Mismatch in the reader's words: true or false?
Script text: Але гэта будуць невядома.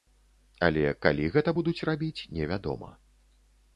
true